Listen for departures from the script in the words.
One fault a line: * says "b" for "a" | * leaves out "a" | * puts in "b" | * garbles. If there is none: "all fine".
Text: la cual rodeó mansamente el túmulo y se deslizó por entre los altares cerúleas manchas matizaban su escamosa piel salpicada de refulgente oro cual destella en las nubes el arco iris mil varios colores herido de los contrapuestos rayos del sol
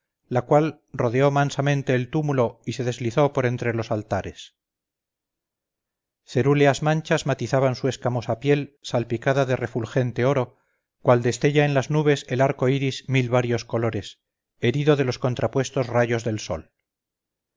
all fine